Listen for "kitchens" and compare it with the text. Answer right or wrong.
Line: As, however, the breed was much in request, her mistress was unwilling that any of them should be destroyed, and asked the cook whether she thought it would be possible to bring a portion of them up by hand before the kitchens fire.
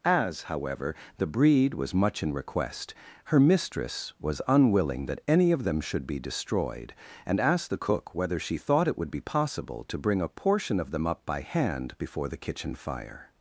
wrong